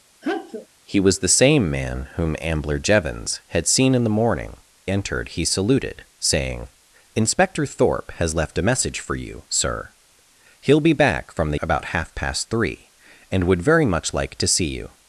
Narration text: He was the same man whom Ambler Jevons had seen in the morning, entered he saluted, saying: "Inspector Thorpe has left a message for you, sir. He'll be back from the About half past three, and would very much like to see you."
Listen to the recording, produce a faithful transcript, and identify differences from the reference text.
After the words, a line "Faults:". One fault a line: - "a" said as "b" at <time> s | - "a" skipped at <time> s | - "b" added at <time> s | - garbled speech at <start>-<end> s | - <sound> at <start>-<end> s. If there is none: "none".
He was the same man whom Ambler Jevons had seen in the morning, entered he saluted, saying: "Inspector Thorpe has left a message for you, sir. He'll be back from the About half past three, and would very much like to see you."
Faults:
- sneeze at 0.2-0.7 s